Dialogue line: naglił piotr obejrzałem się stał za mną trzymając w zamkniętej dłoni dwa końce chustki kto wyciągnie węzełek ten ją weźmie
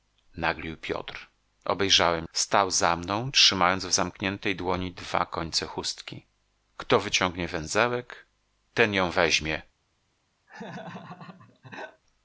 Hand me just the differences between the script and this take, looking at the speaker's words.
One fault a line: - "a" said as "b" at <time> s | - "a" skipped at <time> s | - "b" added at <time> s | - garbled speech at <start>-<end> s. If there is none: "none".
- "się" skipped at 2.3 s